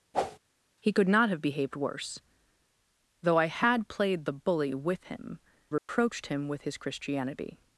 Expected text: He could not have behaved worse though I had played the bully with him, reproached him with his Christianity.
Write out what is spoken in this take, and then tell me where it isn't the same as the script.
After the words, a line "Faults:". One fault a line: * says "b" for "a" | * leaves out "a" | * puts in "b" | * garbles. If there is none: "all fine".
He could not have behaved worse though I had played the bully with him, reproached him with his Christianity.
Faults:
all fine